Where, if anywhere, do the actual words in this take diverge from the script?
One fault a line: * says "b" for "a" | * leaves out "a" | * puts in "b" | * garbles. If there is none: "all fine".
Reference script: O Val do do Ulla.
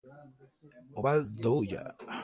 * leaves out "do"